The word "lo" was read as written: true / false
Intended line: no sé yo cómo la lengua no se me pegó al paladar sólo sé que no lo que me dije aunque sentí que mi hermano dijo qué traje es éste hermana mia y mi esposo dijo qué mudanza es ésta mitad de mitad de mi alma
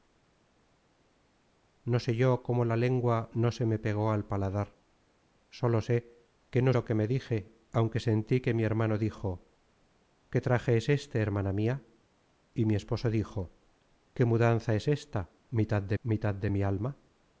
true